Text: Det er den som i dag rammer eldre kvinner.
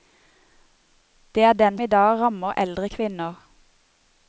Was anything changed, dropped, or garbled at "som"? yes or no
yes